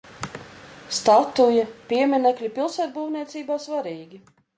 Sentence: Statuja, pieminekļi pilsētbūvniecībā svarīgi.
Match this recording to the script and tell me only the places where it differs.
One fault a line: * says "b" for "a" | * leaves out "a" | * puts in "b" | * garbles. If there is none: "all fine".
all fine